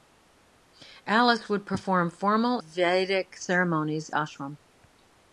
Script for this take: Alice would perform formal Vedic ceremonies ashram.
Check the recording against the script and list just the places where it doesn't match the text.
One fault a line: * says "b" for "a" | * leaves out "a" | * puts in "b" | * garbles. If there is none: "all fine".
all fine